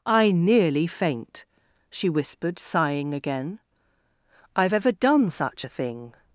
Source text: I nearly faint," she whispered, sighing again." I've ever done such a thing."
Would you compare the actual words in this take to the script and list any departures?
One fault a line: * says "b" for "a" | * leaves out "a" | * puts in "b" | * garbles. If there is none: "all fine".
all fine